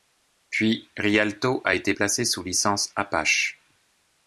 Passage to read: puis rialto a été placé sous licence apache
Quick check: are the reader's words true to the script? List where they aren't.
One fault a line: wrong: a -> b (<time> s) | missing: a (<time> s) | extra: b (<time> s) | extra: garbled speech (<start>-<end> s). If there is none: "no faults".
no faults